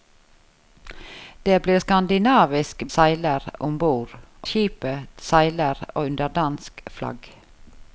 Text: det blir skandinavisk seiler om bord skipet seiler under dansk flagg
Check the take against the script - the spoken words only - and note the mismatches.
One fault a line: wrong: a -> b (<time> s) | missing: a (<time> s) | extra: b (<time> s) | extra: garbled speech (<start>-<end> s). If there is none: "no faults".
no faults